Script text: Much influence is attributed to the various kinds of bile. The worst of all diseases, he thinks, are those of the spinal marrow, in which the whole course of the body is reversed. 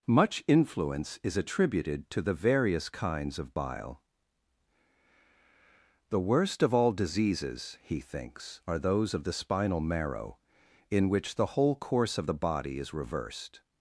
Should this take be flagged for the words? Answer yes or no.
no